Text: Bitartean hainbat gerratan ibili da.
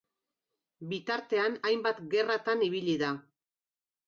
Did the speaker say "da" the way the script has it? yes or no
yes